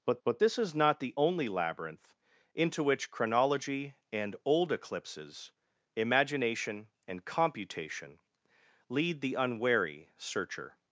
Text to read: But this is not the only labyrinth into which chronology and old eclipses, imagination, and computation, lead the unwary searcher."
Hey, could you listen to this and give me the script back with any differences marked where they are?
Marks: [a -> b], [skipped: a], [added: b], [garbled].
But [added: but] this is not the only labyrinth into which chronology and old eclipses, imagination, and computation, lead the unwary searcher."